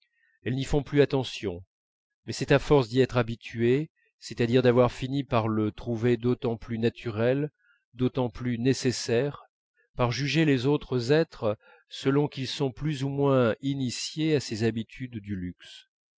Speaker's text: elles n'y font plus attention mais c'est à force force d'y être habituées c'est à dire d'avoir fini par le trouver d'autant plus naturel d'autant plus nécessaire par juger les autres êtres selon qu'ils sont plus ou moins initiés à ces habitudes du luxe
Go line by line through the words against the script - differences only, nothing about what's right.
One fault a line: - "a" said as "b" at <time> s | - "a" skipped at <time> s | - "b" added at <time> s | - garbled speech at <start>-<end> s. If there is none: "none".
- "force" skipped at 2.9 s